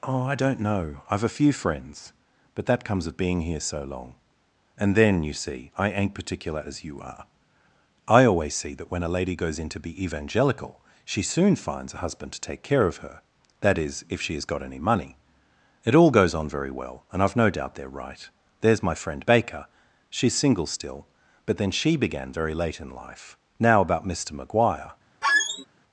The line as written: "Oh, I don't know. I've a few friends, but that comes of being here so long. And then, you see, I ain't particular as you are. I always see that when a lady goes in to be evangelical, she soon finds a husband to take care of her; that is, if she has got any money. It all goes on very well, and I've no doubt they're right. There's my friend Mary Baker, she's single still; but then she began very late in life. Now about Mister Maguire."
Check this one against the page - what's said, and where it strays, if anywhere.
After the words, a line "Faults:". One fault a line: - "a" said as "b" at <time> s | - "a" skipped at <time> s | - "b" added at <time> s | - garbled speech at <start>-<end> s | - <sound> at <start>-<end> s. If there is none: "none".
"Oh, I don't know. I've a few friends, but that comes of being here so long. And then, you see, I ain't particular as you are. I always see that when a lady goes in to be evangelical, she soon finds a husband to take care of her; that is, if she has got any money. It all goes on very well, and I've no doubt they're right. There's my friend Baker, she's single still; but then she began very late in life. Now about Mister Maguire."
Faults:
- "Mary" skipped at 19.2 s
- squeak at 25.2-25.7 s